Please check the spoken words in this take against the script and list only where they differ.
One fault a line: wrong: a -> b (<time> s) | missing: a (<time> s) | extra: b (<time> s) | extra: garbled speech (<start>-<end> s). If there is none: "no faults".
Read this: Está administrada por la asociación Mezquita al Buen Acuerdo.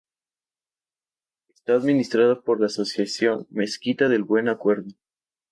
wrong: al -> del (4.1 s)